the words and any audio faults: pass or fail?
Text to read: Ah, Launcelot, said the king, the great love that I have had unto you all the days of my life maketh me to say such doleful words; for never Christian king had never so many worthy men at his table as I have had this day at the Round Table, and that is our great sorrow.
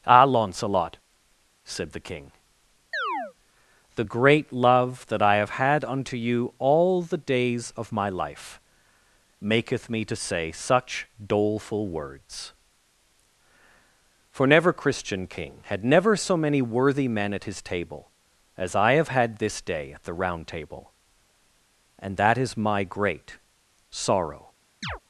fail